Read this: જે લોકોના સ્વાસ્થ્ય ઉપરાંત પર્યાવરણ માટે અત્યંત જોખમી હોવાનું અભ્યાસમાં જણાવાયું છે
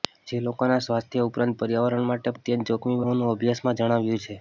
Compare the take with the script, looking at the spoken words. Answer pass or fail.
pass